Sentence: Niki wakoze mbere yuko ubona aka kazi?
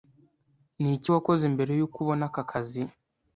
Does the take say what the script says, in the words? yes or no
yes